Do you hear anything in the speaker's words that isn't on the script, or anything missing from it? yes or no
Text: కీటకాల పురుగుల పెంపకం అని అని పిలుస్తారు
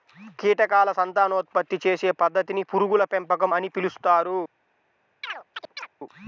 yes